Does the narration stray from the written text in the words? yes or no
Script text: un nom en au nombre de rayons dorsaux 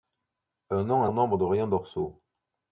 no